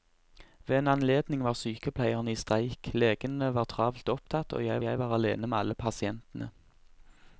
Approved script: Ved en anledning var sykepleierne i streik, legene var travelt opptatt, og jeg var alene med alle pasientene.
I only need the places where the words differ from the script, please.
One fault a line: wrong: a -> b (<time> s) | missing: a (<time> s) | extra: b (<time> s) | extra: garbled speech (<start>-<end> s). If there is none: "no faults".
extra: jeg (4.8 s)